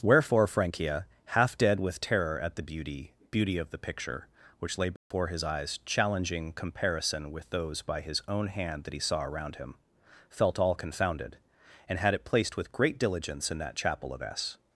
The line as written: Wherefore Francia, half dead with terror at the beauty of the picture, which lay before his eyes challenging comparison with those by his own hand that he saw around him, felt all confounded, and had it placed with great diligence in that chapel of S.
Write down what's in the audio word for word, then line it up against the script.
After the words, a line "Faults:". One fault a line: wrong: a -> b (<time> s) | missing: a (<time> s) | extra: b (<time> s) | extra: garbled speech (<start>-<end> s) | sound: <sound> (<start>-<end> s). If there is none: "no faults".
Wherefore Francia, half dead with terror at the beauty beauty of the picture, which lay before his eyes challenging comparison with those by his own hand that he saw around him, felt all confounded, and had it placed with great diligence in that chapel of S.
Faults:
extra: beauty (3.3 s)
sound: dropout (5.0-5.1 s)